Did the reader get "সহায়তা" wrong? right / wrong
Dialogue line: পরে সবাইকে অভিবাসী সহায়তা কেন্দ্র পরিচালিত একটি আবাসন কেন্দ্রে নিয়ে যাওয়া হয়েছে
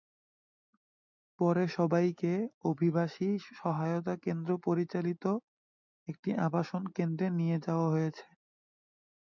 right